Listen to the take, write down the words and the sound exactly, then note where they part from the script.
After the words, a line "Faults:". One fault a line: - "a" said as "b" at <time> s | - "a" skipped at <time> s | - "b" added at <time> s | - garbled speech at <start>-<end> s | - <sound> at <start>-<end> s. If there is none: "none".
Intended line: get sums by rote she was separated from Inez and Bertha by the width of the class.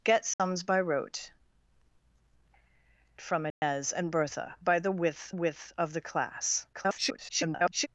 get sums by rote from Inez and Bertha by the width width of the class. [garbled]
Faults:
- dropout at 0.3-0.4 s
- "she was separated" skipped at 1.3 s
- dropout at 3.5-3.6 s
- "width" added at 5.3 s
- garbled speech at 6.7-7.9 s